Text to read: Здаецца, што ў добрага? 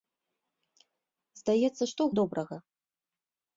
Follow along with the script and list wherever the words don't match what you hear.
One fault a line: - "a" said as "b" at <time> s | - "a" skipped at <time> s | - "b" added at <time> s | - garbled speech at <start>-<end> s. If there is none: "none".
none